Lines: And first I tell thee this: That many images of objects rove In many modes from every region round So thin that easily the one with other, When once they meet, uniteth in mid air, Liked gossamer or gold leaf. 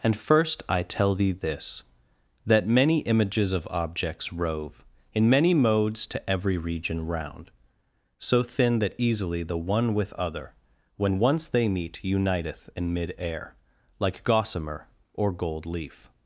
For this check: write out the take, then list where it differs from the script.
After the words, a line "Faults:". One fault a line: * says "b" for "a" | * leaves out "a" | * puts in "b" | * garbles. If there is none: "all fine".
And first I tell thee this: That many images of objects rove In many modes to every region round So thin that easily the one with other, When once they meet, uniteth in mid air, Like gossamer or gold leaf.
Faults:
* says "to" for "from"
* says "Like" for "Liked"